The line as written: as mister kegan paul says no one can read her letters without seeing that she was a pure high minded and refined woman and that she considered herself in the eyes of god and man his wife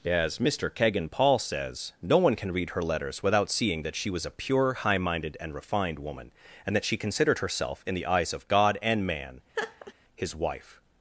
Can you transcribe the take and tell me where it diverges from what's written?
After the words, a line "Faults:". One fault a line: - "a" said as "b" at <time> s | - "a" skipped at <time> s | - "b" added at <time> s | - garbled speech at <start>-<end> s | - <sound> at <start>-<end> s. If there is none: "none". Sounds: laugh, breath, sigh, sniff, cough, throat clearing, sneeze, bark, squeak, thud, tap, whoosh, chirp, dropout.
as mister kegan paul says no one can read her letters without seeing that she was a pure high minded and refined woman and that she considered herself in the eyes of god and man his wife
Faults:
- laugh at 9.5-9.9 s